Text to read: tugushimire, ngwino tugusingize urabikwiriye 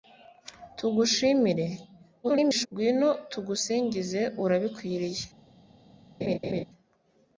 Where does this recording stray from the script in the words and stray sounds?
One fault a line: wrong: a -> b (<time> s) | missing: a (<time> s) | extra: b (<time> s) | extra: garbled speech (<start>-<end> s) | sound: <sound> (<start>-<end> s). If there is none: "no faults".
extra: garbled speech (2.2-2.7 s)
sound: laugh (6.2-6.6 s)